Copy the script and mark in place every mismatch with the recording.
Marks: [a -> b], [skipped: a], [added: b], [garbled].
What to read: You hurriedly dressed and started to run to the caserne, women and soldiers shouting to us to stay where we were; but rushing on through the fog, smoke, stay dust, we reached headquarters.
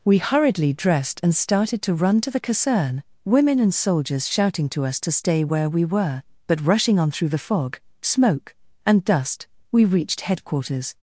[You -> We] hurriedly dressed and started to run to the caserne, women and soldiers shouting to us to stay where we were; but rushing on through the fog, smoke, [stay -> and] dust, we reached headquarters.